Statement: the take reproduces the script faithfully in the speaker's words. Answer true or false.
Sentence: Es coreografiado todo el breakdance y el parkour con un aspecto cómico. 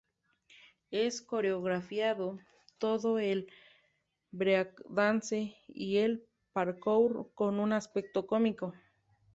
true